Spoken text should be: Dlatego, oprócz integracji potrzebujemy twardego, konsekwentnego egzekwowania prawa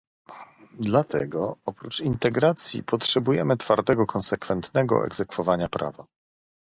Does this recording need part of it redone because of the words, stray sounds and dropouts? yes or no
no